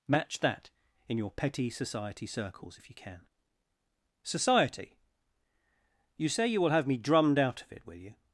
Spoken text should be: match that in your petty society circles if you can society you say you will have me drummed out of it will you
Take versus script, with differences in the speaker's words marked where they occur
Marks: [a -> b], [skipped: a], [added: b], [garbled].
match that in your petty society circles if you can society you say you will have me drummed out of it will you